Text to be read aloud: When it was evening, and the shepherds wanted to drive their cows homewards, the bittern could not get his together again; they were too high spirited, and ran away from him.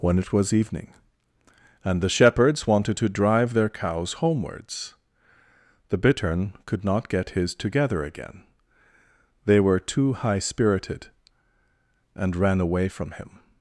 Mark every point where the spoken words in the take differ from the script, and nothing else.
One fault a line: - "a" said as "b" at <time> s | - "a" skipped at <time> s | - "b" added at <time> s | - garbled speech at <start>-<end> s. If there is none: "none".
none